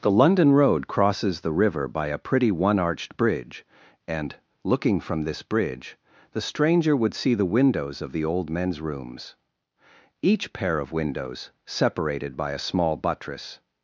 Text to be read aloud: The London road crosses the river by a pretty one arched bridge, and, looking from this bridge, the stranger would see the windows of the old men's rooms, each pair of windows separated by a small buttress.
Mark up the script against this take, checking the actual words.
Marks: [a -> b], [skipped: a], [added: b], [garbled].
The London road crosses the river by a pretty one arched bridge, and, looking from this bridge, the stranger would see the windows of the old men's rooms, each pair of windows separated by a small buttress.